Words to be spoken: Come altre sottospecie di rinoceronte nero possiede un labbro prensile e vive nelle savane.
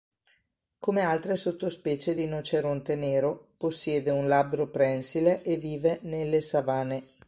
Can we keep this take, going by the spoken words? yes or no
no